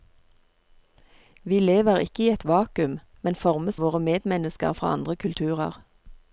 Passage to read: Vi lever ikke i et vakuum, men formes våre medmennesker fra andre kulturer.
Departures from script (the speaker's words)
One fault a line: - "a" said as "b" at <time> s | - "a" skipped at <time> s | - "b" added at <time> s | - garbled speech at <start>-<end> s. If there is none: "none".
none